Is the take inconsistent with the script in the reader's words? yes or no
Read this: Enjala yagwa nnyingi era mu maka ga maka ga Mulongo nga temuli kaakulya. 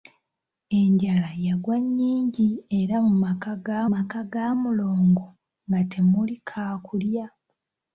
no